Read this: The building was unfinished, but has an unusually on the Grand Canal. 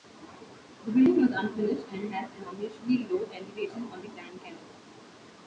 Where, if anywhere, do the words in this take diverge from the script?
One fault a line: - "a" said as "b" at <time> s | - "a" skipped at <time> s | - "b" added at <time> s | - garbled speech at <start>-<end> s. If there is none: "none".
- "but" said as "and" at 1.9 s
- "low elevation" added at 3.1 s